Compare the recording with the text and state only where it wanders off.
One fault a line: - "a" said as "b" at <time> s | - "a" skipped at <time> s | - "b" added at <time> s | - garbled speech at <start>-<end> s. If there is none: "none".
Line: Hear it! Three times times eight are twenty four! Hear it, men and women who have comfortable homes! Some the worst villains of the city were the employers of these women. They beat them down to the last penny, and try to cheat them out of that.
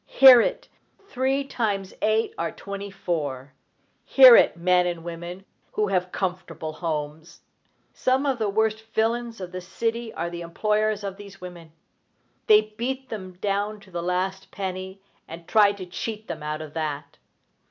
- "times" skipped at 1.9 s
- "of" added at 8.2 s
- "were" said as "are" at 10.2 s